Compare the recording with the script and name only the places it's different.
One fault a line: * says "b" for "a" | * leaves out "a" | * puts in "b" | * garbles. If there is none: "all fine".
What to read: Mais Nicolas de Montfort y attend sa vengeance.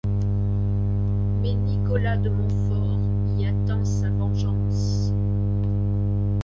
all fine